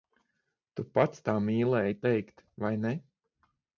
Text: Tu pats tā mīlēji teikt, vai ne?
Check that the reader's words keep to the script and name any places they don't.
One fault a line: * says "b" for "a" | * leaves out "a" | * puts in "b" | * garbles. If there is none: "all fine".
all fine